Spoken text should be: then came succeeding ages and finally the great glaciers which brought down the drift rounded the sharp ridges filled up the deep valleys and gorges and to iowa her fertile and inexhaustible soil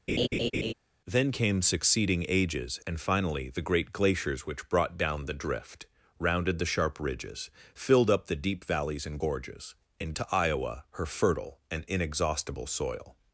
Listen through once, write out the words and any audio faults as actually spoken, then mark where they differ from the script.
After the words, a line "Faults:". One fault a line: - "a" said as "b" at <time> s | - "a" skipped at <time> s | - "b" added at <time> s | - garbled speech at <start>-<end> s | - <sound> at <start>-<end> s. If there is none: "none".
then came succeeding ages and finally the great glaciers which brought down the drift rounded the sharp ridges filled up the deep valleys and gorges and to iowa her fertile and inexhaustible soil
Faults:
- laugh at 0.1-0.7 s